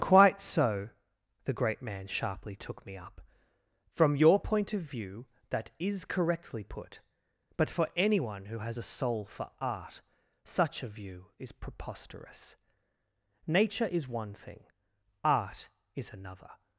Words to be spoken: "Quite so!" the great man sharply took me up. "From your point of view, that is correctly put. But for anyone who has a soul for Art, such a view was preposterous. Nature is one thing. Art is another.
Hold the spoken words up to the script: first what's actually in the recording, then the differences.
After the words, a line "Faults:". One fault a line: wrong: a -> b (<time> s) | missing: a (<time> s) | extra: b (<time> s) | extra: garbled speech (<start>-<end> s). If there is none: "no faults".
"Quite so!" the great man sharply took me up. "From your point of view, that is correctly put. But for anyone who has a soul for Art, such a view is preposterous. Nature is one thing. Art is another.
Faults:
wrong: was -> is (11.4 s)